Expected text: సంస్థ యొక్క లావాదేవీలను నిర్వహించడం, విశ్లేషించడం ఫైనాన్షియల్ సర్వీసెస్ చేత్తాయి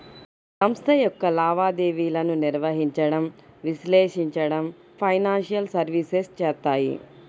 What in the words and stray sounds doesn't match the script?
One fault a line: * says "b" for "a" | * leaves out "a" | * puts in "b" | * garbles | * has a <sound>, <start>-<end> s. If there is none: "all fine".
all fine